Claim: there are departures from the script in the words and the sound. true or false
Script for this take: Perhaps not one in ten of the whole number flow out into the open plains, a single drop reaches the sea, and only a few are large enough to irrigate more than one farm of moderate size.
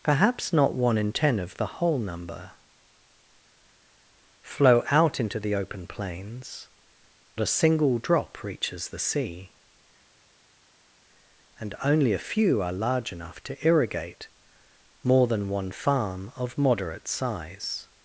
false